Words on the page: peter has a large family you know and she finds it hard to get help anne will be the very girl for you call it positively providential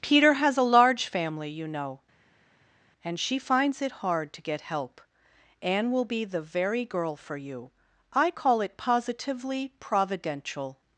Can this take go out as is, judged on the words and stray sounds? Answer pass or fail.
fail